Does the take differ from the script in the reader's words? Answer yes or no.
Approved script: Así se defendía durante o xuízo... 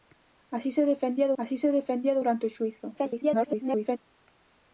yes